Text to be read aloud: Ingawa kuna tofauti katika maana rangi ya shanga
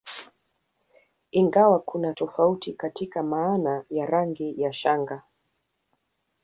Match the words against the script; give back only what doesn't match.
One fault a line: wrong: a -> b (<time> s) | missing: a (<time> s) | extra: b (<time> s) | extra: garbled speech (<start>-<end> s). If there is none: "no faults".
extra: ya (3.9 s)